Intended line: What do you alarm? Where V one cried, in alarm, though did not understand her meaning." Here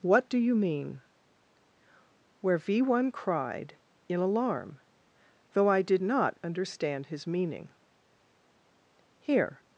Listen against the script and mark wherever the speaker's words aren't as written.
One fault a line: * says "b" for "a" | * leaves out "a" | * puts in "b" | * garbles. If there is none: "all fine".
* says "mean" for "alarm"
* puts in "I"
* says "his" for "her"